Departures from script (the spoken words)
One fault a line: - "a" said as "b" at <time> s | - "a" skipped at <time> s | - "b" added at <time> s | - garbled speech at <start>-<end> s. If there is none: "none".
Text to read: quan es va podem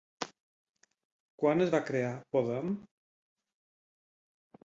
- "crear" added at 1.9 s